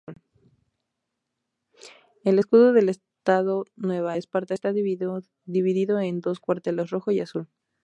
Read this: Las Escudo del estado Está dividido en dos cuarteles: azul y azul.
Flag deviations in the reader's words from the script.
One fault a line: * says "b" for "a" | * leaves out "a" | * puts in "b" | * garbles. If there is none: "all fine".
* says "El" for "Las"
* puts in "Nueva Esparta"
* says "rojo" for "azul"